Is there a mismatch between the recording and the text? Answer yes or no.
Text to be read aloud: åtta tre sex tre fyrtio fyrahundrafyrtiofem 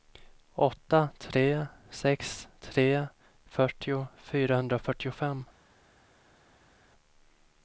no